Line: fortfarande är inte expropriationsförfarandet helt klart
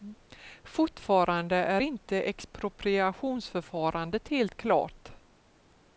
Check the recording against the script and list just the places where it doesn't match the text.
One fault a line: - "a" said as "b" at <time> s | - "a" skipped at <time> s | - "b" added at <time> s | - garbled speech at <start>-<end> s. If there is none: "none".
none